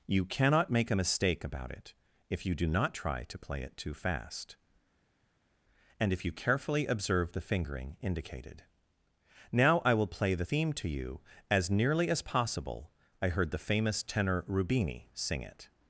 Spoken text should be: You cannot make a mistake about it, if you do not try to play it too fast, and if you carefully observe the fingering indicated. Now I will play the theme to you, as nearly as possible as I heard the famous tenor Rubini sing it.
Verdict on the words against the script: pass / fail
fail